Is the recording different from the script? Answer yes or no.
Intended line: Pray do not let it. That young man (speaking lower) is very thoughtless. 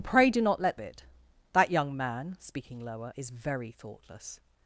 no